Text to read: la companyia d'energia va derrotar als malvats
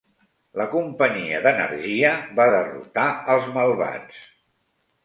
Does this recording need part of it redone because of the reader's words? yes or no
no